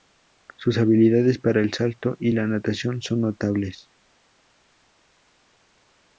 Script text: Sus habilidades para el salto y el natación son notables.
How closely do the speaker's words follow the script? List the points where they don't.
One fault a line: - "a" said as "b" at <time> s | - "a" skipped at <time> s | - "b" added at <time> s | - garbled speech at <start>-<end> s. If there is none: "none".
- "el" said as "la" at 2.3 s